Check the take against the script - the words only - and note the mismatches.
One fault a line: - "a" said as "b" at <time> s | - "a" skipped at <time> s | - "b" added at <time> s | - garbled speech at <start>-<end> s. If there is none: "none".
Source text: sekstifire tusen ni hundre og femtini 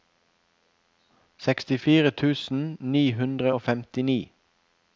none